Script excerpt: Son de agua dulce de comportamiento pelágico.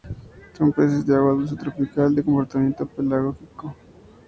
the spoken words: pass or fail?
fail